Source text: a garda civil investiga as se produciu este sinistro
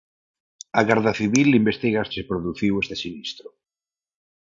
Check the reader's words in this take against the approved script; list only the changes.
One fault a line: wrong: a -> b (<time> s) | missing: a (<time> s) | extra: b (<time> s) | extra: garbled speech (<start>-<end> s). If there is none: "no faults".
no faults